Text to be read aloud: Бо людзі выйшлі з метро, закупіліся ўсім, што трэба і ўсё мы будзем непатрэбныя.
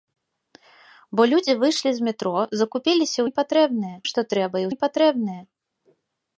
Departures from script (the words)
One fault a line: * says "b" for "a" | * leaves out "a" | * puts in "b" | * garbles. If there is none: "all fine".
* says "непатрэбныя" for "ўсім"
* leaves out "ўсё мы будзем"